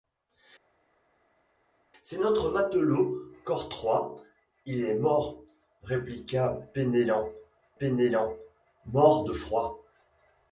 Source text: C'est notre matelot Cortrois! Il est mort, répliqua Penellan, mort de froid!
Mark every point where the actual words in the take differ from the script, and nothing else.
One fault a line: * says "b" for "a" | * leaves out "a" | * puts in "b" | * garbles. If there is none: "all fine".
* puts in "Penellan"